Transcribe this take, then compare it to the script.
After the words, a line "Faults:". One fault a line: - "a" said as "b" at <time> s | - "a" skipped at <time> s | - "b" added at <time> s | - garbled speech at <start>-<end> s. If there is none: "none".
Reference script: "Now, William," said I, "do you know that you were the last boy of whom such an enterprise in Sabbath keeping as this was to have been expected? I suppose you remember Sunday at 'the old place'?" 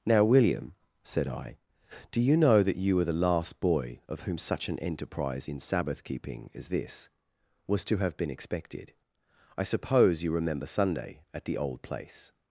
"Now, William," said I, "do you know that you were the last boy of whom such an enterprise in Sabbath keeping as this was to have been expected? I suppose you remember Sunday at 'the old place'?"
Faults:
none